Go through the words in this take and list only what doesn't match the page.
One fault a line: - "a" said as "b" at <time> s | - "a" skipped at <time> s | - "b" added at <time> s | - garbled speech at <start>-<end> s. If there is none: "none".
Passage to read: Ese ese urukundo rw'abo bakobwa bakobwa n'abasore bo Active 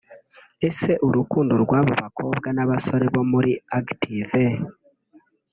- "ese" skipped at 0.9 s
- "bakobwa" skipped at 2.5 s
- "muri" added at 3.3 s